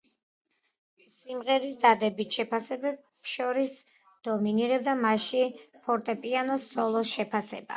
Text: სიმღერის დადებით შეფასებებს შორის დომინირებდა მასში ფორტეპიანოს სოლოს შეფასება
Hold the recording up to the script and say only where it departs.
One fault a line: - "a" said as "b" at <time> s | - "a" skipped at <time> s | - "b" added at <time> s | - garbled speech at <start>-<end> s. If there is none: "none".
none